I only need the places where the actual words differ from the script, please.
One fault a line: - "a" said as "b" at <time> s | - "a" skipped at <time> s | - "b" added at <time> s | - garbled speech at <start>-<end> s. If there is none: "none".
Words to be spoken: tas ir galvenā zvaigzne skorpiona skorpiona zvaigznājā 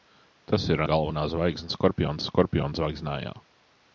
none